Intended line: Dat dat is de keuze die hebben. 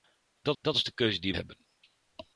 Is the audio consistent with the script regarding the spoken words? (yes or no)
yes